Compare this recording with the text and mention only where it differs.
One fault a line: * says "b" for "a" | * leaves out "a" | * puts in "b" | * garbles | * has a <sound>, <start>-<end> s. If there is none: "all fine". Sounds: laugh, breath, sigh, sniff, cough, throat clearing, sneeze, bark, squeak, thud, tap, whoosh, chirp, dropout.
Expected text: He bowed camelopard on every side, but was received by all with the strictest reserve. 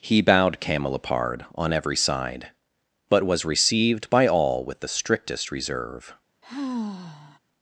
* has a sigh, 6.4-7.4 s